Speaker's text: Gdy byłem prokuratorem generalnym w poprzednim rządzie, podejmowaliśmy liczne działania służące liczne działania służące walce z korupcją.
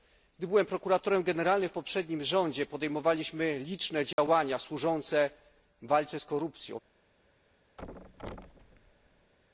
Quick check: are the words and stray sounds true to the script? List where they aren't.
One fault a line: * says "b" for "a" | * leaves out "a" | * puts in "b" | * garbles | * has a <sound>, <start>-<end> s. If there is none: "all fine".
* has a dropout, 4.1-4.2 s
* leaves out "liczne działania służące"
* has a thud, 7.8-9.3 s